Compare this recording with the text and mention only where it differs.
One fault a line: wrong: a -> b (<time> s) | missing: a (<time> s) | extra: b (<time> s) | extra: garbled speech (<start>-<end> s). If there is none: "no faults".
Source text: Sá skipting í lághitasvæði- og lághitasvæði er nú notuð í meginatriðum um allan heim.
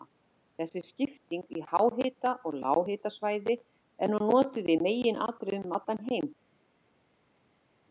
wrong: Sá -> Þessi (0.6 s)
wrong: lághitasvæði -> háhita (1.7 s)